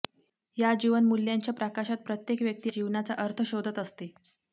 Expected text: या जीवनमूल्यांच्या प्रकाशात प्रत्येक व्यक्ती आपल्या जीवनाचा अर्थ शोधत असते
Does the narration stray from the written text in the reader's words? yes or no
yes